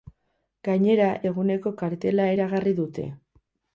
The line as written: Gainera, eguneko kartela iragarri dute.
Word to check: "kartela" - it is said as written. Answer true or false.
true